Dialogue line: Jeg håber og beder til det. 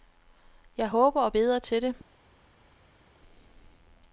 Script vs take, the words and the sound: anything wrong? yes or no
no